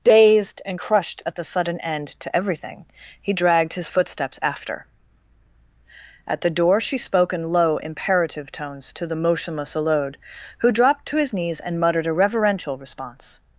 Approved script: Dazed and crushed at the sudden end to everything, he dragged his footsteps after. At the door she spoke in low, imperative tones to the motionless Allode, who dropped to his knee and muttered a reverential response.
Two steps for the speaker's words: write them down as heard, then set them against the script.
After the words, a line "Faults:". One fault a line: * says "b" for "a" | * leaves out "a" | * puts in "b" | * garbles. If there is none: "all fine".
Dazed and crushed at the sudden end to everything, he dragged his footsteps after. At the door she spoke in low, imperative tones to the motionless Allode, who dropped to his knees and muttered a reverential response.
Faults:
* says "knees" for "knee"